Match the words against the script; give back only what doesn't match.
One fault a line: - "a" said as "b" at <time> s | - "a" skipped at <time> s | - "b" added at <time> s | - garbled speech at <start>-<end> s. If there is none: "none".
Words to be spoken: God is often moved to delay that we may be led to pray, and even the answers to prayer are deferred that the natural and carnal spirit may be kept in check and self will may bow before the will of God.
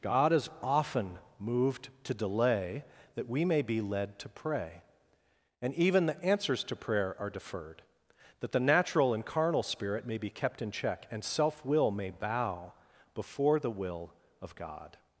none